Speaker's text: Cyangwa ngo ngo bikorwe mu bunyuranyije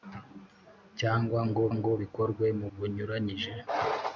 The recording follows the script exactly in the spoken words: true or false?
true